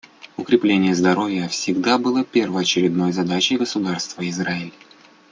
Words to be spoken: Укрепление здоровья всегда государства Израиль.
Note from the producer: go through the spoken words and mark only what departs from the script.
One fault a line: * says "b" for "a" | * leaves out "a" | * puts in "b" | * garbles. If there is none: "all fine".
* puts in "было первоочередной задачей"